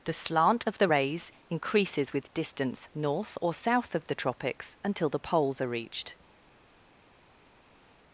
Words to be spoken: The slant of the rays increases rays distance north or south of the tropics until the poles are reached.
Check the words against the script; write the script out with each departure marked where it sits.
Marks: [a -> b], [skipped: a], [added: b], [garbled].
The slant of the rays increases [rays -> with] distance north or south of the tropics until the poles are reached.